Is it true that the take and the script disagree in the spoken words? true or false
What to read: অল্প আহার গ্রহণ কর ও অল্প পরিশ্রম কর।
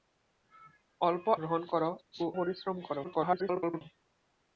true